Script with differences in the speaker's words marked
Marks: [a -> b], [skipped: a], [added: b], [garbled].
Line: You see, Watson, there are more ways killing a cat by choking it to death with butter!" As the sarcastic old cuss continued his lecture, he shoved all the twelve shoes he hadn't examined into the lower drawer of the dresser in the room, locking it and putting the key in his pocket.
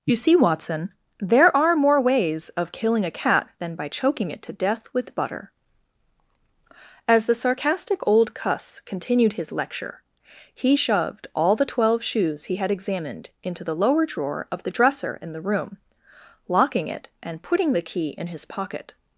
You see, Watson, there are more ways [added: of] killing a cat [added: than] by choking it to death with butter!" As the sarcastic old cuss continued his lecture, he shoved all the twelve shoes he [hadn't -> had] examined into the lower drawer of the dresser in the room, locking it and putting the key in his pocket.